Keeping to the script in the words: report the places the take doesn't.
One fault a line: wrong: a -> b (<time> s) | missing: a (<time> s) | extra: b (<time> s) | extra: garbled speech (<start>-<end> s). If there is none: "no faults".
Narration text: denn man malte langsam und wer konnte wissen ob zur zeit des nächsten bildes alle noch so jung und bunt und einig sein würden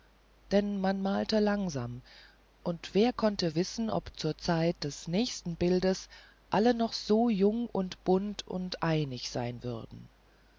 no faults